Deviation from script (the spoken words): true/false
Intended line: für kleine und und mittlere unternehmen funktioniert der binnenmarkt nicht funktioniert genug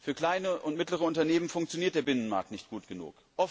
true